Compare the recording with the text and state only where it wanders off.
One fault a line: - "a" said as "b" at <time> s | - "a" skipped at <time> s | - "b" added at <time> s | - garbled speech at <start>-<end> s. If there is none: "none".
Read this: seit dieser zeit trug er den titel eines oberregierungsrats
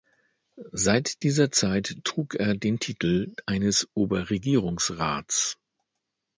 none